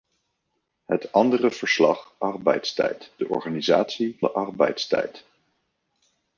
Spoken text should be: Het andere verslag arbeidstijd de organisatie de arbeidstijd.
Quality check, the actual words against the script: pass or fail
pass